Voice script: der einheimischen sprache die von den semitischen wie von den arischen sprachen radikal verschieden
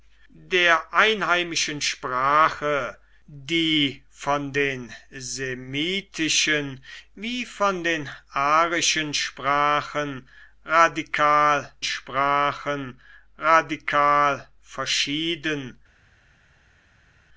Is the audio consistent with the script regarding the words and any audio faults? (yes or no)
no